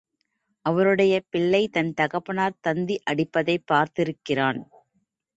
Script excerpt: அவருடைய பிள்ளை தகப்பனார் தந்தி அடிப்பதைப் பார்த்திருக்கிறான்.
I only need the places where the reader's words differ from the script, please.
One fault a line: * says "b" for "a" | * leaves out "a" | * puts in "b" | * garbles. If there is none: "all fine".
* puts in "தன்"